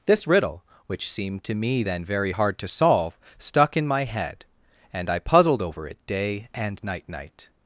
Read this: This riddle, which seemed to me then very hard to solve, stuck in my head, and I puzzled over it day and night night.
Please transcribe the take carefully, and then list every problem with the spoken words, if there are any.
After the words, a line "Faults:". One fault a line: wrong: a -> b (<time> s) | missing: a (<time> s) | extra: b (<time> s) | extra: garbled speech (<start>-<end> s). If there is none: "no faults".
This riddle, which seemed to me then very hard to solve, stuck in my head, and I puzzled over it day and night night.
Faults:
no faults